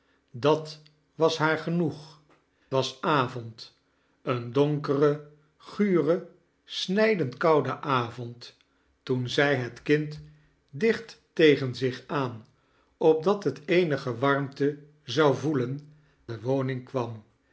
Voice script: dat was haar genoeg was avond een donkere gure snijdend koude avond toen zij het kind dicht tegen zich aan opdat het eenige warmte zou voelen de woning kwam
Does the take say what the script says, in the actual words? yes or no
yes